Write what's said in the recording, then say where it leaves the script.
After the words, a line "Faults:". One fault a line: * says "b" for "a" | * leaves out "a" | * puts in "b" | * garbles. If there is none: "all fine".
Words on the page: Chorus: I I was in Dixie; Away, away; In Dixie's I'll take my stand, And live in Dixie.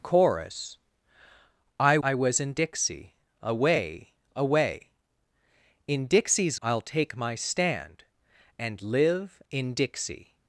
Chorus: I I was in Dixie; Away, away; In Dixie's I'll take my stand, And live in Dixie.
Faults:
all fine